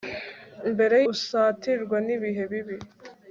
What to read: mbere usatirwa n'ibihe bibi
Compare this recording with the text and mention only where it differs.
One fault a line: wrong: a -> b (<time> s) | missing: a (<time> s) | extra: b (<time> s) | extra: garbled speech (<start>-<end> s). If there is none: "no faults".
no faults